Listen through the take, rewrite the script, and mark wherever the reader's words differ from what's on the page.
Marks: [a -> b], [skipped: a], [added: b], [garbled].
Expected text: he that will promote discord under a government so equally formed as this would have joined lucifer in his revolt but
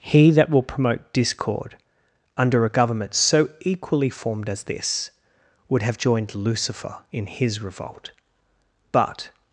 he that will promote discord under a government so equally formed as this would have joined lucifer in his revolt but